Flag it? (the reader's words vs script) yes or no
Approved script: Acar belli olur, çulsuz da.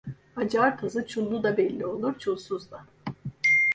yes